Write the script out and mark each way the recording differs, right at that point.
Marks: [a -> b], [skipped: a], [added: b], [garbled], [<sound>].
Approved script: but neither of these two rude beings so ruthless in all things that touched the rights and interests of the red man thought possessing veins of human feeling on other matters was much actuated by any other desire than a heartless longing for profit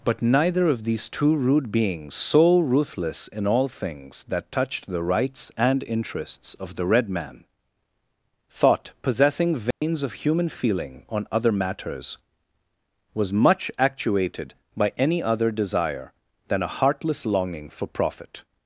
but neither of these two rude beings so ruthless in all things that touched the rights and interests of the red man thought possessing veins [dropout] of human feeling on other matters was much actuated by any other desire than a heartless longing for profit